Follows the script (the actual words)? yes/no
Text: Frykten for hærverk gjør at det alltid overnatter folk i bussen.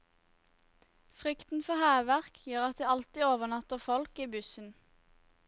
yes